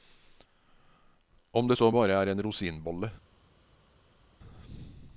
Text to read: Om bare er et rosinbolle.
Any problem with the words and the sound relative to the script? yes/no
yes